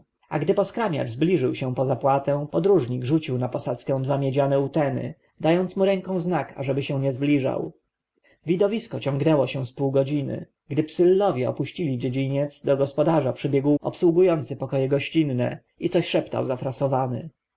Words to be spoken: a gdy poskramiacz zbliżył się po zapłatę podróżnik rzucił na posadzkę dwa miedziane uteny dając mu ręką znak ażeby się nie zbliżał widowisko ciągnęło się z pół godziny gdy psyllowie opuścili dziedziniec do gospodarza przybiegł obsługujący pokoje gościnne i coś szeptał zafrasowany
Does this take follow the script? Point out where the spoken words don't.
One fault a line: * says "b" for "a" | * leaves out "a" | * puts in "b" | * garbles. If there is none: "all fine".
all fine